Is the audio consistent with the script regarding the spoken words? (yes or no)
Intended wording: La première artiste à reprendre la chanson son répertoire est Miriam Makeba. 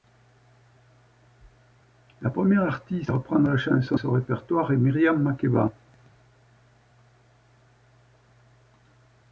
yes